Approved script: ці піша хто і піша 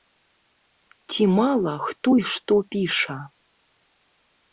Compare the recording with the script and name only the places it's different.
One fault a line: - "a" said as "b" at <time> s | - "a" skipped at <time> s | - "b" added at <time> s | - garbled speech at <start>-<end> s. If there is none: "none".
- "піша" said as "мала" at 1.4 s
- "што" added at 2.3 s